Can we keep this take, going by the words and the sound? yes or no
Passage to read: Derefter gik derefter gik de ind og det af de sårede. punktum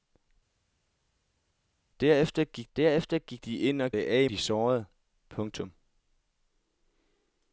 yes